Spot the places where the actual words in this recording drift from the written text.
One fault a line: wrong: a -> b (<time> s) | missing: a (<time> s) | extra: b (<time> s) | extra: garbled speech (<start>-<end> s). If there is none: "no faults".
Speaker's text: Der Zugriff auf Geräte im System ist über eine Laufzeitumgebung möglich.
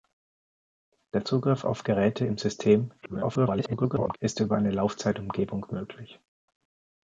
extra: garbled speech (3.0-4.2 s)